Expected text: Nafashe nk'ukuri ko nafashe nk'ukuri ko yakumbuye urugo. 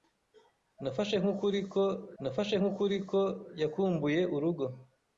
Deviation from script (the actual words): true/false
false